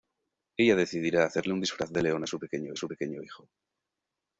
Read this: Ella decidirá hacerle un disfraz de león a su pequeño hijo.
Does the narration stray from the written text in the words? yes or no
yes